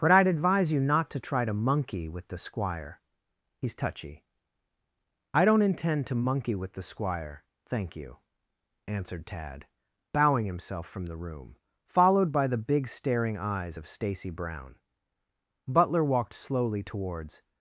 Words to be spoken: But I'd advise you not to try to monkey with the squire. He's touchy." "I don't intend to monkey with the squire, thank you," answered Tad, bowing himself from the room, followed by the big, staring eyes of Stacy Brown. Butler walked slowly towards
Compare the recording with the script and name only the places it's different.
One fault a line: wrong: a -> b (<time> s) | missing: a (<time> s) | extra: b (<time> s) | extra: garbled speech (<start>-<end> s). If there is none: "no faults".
no faults